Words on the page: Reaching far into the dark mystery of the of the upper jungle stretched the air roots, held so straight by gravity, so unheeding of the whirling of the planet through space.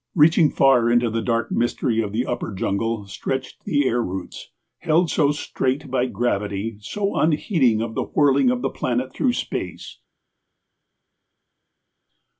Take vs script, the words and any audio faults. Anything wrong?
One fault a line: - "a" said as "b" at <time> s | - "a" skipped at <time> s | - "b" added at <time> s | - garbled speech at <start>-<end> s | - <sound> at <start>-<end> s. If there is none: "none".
- "of the" skipped at 2.2 s